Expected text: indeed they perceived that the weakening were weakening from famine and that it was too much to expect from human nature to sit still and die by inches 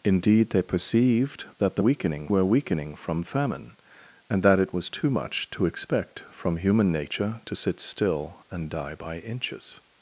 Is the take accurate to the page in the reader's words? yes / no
yes